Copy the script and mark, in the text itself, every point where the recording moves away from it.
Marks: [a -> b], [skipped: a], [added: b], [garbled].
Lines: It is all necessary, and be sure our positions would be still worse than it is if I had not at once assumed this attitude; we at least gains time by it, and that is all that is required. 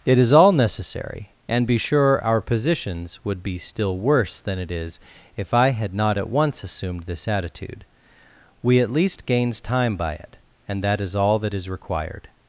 It is all necessary, and be sure our positions would be still worse than it is if I had not at once assumed this attitude; we at least gains time by it, and that is all that is required.